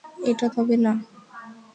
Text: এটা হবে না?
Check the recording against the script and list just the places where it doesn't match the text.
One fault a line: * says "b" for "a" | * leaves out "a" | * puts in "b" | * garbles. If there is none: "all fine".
all fine